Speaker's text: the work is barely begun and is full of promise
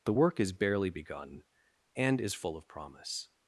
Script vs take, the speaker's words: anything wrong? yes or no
no